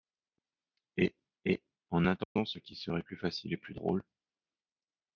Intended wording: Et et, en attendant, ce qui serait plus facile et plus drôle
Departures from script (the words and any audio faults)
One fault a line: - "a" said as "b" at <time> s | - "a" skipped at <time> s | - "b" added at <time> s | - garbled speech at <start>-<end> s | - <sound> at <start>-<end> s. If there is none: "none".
- dropout at 2.2-2.4 s